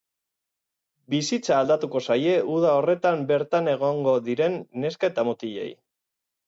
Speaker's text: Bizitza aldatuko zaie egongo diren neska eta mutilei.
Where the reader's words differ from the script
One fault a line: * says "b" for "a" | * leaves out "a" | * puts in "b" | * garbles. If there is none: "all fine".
* puts in "uda horretan bertan"